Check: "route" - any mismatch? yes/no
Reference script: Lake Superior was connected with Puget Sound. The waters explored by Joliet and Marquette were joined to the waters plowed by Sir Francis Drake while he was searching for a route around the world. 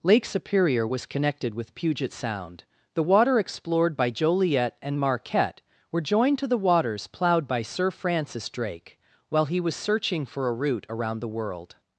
no